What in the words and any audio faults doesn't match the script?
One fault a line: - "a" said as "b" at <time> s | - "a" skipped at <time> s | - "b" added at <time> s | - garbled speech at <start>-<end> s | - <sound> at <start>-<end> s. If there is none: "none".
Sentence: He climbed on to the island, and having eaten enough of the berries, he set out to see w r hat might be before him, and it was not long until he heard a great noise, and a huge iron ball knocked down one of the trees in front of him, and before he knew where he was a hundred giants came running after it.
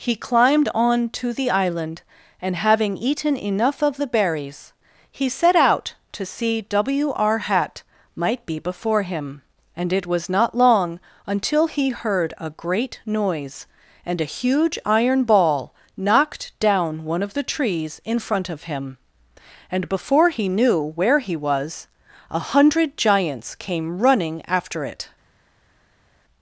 none